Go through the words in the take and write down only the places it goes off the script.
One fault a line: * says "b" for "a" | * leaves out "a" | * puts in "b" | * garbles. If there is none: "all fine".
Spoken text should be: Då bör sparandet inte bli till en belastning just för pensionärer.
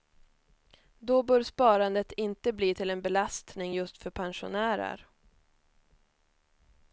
all fine